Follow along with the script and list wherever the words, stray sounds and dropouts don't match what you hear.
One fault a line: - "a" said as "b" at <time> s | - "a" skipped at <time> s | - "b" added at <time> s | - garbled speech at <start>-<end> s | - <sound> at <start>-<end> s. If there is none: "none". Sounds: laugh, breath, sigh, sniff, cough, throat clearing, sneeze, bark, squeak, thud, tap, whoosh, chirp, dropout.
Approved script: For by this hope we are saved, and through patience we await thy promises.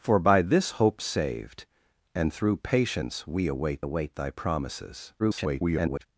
- "we are" skipped at 1.0 s
- "await" added at 3.8 s
- garbled speech at 5.2-6.1 s